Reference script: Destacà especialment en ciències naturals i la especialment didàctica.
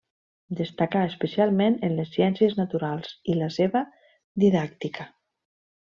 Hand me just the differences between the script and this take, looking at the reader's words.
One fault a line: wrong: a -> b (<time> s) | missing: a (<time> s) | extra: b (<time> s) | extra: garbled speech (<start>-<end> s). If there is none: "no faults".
extra: les (2.0 s)
wrong: especialment -> seva (3.6 s)